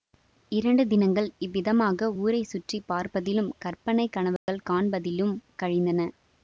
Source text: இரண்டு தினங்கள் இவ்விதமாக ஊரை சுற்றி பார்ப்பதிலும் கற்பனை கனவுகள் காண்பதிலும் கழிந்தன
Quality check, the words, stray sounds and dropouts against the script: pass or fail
fail